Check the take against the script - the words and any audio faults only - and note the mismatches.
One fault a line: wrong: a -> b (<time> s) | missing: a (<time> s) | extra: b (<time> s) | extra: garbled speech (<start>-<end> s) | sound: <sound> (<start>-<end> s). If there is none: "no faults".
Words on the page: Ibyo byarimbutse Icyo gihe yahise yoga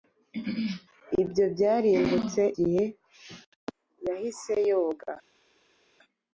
missing: Icyo (2.4 s)